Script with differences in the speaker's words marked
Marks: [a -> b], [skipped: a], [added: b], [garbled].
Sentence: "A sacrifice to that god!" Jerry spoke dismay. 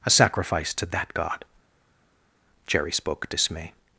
"A sacrifice to that god!" Jerry spoke dismay.